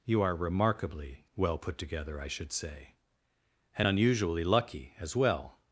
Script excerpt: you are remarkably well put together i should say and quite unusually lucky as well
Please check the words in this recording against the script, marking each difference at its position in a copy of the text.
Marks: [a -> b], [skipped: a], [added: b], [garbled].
you are remarkably well put together i should say and [skipped: quite] unusually lucky as well